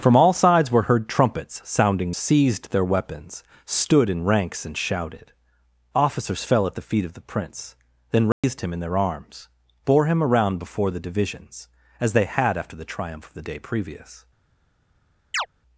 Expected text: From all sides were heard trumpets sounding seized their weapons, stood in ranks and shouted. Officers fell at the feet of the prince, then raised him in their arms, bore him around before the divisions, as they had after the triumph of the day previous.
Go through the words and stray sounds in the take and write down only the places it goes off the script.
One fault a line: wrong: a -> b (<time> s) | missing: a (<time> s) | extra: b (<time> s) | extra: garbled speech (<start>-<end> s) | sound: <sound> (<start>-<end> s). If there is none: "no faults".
sound: dropout (8.3-8.4 s)
sound: chirp (15.3-15.5 s)